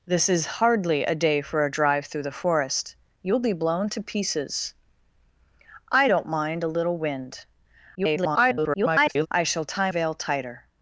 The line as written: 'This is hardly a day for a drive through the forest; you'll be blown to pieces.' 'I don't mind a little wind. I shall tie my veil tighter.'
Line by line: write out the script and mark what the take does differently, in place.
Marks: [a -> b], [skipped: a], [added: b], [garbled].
'This is hardly a day for a drive through the forest; you'll be blown to pieces.' 'I don't mind a little wind. [garbled] I shall tie [skipped: my] veil tighter.'